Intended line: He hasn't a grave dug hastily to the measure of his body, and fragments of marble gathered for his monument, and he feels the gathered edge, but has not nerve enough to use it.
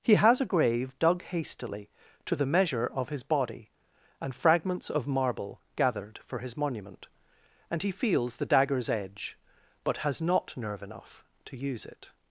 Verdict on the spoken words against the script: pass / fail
fail